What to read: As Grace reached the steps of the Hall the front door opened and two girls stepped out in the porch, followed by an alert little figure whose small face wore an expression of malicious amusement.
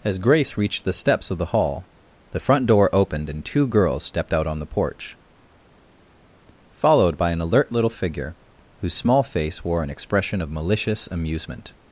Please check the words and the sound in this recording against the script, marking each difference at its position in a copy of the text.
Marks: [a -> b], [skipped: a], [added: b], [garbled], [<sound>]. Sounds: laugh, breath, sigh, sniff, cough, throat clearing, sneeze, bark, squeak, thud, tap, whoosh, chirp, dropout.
As Grace reached the steps of the Hall the front door opened and two girls stepped out [in -> on] the porch, followed by an alert little figure whose small face wore an expression of malicious amusement.